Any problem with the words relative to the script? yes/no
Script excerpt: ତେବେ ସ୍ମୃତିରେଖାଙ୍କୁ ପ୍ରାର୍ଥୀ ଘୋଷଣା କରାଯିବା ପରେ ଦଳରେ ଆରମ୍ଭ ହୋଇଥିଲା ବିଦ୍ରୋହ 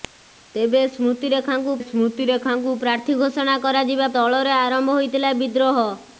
yes